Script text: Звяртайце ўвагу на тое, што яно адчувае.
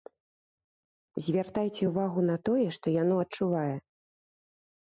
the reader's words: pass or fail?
pass